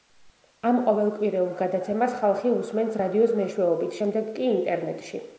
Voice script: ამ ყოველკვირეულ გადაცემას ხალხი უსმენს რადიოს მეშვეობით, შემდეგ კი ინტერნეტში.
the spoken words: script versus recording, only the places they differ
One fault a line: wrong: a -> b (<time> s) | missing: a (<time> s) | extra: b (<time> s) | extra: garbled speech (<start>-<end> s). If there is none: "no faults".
no faults